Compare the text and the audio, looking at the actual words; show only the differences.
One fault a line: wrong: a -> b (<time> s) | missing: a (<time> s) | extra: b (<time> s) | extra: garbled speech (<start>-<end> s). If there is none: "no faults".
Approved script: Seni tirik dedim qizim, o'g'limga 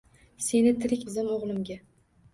missing: dedim (1.1 s)